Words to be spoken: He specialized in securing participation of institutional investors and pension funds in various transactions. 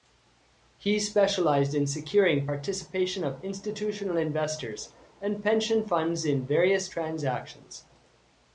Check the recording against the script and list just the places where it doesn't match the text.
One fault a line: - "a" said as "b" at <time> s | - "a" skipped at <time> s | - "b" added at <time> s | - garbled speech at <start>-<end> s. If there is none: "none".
none